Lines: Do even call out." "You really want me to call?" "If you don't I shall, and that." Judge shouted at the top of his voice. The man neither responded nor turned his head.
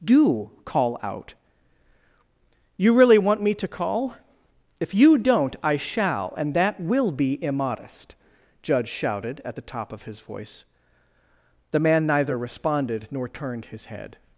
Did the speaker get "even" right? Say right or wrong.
wrong